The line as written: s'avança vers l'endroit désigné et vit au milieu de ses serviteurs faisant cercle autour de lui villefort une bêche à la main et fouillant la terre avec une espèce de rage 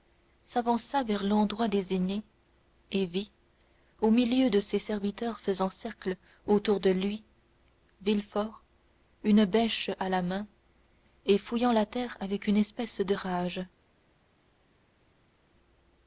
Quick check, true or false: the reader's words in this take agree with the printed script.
true